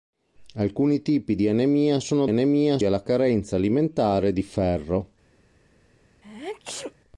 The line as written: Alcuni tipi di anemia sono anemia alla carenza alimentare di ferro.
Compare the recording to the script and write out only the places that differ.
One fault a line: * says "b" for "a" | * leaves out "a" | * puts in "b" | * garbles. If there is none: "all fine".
all fine